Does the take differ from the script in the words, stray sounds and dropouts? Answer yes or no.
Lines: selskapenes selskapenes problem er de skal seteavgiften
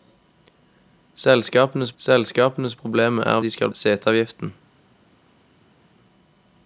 no